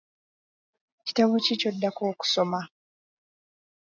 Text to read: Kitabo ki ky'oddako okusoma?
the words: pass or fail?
pass